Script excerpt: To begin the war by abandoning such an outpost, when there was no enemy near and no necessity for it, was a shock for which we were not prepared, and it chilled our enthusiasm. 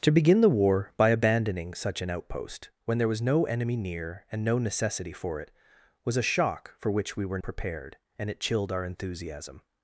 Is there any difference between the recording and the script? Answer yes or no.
yes